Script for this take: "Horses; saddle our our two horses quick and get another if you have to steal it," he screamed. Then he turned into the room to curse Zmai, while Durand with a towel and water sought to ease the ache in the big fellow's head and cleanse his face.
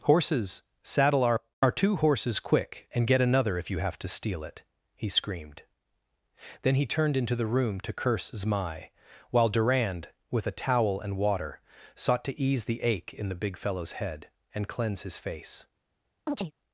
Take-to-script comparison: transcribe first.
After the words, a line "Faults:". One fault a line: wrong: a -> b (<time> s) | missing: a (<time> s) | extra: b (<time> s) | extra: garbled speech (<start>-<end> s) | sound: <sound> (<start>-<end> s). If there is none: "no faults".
"Horses; saddle our our two horses quick and get another if you have to steal it," he screamed. Then he turned into the room to curse Zmai, while Durand with a towel and water sought to ease the ache in the big fellow's head and cleanse his face.
Faults:
sound: chirp (16.3-16.5 s)